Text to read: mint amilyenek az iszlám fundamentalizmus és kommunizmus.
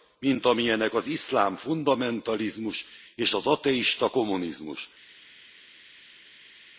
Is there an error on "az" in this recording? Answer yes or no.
no